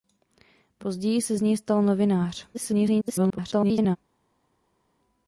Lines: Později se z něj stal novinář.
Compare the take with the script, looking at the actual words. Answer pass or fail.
fail